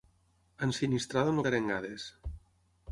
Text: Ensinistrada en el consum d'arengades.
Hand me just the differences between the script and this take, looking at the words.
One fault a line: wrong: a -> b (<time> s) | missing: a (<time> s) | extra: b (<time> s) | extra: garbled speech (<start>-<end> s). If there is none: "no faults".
missing: consum (1.4 s)